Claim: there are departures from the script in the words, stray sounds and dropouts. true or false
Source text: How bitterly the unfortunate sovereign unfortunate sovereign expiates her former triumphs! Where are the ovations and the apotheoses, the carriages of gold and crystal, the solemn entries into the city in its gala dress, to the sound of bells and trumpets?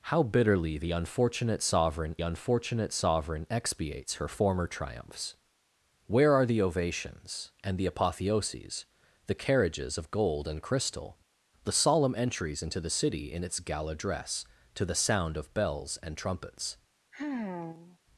true